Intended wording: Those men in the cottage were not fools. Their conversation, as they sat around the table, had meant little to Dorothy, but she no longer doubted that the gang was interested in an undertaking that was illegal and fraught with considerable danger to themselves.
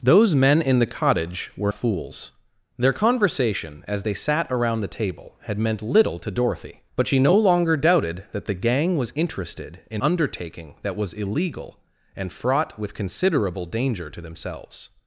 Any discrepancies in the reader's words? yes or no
yes